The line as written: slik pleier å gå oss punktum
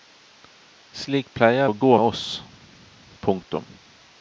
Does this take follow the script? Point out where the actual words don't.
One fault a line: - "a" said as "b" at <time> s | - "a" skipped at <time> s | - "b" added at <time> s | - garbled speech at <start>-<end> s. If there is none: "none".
none